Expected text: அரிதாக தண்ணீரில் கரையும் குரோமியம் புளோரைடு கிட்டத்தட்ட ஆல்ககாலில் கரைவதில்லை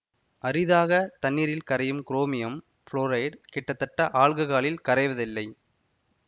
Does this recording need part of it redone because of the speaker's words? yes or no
no